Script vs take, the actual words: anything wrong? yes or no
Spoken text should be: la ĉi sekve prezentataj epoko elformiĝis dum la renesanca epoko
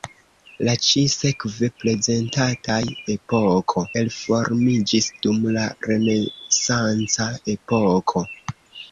no